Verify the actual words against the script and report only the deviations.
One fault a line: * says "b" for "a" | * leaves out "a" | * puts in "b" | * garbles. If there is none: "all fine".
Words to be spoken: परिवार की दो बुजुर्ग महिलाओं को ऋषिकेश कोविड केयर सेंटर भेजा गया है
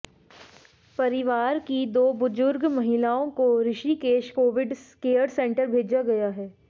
all fine